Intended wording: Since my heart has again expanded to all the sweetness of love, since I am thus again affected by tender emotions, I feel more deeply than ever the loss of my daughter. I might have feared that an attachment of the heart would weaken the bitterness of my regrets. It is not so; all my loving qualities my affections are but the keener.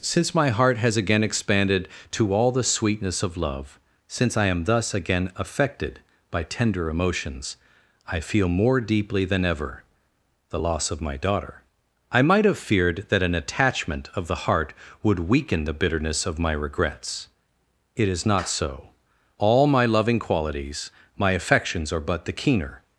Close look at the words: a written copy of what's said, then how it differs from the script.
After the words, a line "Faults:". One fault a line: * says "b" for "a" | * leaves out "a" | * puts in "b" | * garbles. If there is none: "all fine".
Since my heart has again expanded to all the sweetness of love, since I am thus again affected by tender emotions, I feel more deeply than ever the loss of my daughter. I might have feared that an attachment of the heart would weaken the bitterness of my regrets. It is not so; all my loving qualities my affections are but the keener.
Faults:
all fine